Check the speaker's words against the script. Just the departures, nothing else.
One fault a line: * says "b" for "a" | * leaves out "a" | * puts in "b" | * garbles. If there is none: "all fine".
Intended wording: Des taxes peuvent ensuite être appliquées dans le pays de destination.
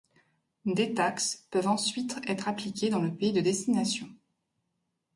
all fine